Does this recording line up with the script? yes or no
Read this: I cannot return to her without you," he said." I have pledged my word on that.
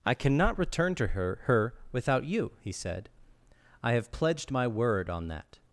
no